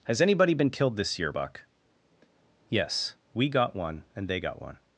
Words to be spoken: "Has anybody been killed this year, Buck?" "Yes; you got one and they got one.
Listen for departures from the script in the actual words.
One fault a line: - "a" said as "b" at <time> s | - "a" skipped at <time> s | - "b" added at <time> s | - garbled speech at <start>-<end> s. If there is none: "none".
- "you" said as "we" at 3.3 s